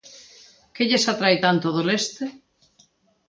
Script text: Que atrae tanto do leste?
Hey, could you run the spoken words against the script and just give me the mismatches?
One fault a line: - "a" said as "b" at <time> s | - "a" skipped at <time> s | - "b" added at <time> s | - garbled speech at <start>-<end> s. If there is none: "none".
- "lles" added at 0.9 s